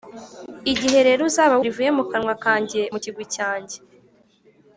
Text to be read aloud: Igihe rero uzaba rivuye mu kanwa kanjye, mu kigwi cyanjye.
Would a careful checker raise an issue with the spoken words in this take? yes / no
no